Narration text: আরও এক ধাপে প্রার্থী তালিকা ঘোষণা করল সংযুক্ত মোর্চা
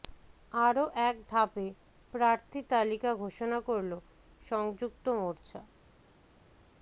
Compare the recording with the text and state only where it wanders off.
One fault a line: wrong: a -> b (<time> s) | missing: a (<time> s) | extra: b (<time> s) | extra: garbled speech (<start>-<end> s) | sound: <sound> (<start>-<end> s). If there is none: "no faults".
no faults